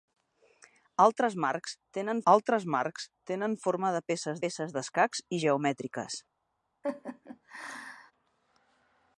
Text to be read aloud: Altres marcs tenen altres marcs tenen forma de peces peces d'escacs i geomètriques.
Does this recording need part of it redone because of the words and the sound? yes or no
yes